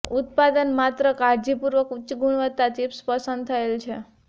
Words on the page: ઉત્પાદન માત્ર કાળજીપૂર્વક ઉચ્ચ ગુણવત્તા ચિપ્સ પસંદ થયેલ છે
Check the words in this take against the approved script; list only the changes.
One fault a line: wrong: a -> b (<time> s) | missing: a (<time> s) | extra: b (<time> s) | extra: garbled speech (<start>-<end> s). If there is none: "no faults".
no faults